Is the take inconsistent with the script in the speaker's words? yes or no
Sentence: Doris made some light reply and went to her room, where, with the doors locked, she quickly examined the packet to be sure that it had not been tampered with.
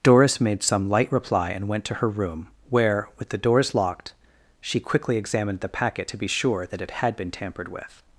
yes